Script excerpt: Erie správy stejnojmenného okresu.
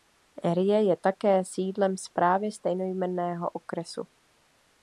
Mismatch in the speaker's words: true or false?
true